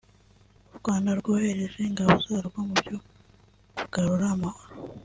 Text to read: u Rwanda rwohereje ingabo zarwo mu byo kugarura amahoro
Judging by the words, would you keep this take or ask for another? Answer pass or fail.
pass